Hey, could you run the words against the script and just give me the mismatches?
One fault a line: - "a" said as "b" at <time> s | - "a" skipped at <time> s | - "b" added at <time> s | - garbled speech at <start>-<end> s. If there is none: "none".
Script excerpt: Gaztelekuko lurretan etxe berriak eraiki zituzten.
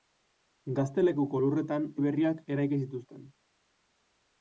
- "etxe" skipped at 1.9 s